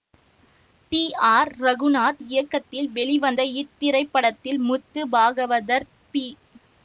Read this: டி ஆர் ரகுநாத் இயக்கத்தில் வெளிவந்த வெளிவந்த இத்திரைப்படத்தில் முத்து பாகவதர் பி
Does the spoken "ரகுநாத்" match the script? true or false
true